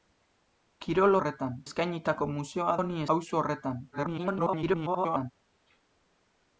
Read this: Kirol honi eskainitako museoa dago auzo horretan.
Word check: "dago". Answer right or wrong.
wrong